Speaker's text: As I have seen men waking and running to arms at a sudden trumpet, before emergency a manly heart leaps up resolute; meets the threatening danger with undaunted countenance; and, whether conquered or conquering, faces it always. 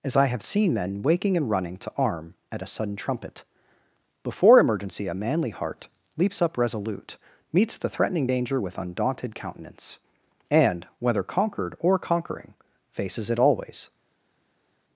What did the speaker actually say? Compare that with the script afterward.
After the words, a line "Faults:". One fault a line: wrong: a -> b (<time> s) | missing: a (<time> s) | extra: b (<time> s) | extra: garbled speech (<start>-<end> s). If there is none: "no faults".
As I have seen men waking and running to arm at a sudden trumpet, before emergency a manly heart leaps up resolute; meets the threatening danger with undaunted countenance; and, whether conquered or conquering, faces it always.
Faults:
wrong: arms -> arm (1.9 s)